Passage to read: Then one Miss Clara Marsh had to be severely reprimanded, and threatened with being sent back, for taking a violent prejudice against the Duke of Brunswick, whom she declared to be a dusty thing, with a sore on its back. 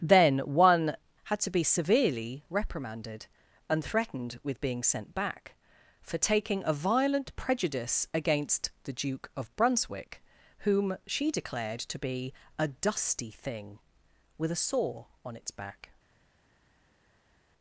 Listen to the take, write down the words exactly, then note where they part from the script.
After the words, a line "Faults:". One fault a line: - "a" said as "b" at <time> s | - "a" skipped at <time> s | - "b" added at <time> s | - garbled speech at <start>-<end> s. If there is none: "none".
Then one Had to be severely reprimanded, and threatened with being sent back, for taking a violent prejudice against the Duke of Brunswick, whom she declared to be a dusty thing, with a sore on its back.
Faults:
- "Miss Clara Marsh" skipped at 0.9 s